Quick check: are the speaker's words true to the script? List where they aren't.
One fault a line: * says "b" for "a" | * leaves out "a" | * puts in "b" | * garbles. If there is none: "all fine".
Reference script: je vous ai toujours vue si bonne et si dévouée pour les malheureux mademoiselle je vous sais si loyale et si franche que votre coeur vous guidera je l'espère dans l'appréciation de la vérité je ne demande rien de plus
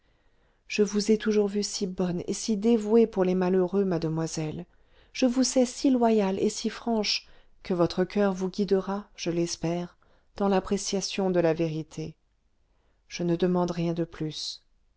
all fine